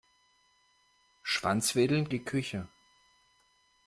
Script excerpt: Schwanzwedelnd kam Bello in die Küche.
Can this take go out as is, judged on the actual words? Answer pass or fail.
fail